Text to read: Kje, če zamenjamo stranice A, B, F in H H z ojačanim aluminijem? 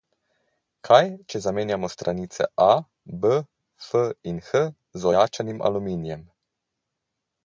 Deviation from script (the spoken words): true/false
true